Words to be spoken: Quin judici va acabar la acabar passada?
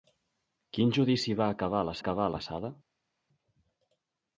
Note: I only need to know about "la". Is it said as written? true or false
true